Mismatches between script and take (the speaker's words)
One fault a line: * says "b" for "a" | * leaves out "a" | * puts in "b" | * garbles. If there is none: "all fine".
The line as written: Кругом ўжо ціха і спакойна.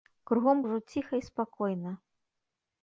all fine